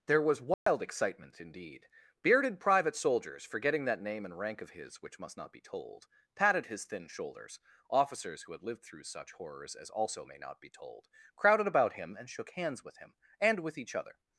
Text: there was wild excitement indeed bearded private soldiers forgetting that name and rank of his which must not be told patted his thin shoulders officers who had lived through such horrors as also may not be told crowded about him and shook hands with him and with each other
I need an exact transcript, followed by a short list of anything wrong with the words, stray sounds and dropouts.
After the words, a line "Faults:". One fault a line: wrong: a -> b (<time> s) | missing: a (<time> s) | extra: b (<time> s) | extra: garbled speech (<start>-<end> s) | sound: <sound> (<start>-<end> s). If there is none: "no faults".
there was wild excitement indeed bearded private soldiers forgetting that name and rank of his which must not be told patted his thin shoulders officers who had lived through such horrors as also may not be told crowded about him and shook hands with him and with each other
Faults:
sound: dropout (0.5-0.7 s)